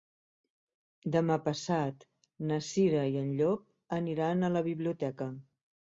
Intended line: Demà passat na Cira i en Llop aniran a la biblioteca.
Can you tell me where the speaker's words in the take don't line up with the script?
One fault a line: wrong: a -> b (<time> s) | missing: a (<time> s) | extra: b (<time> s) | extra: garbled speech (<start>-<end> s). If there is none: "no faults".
no faults